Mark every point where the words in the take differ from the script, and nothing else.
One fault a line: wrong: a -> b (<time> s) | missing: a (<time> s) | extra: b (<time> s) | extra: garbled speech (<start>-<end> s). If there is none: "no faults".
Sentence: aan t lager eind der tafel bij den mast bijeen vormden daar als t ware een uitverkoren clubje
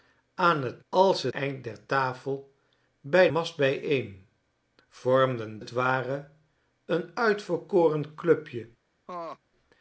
wrong: lager -> als (0.9 s)
missing: den (3.3 s)
missing: daar als (5.6 s)